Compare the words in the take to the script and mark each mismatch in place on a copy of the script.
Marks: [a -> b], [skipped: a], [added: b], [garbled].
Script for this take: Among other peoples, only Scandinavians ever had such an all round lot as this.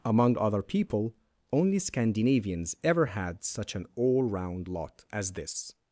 Among other [peoples, -> people] only Scandinavians ever had such an all round lot as this.